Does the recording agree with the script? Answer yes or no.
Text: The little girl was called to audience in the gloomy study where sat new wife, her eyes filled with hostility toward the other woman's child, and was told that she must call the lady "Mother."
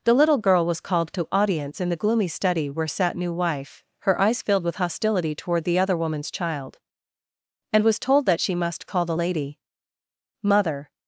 yes